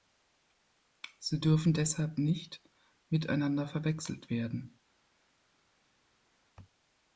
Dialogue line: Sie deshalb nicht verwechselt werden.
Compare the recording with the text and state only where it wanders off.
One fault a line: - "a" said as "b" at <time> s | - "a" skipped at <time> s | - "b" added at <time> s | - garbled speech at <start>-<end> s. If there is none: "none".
- "dürfen" added at 1.4 s
- "miteinander" added at 3.1 s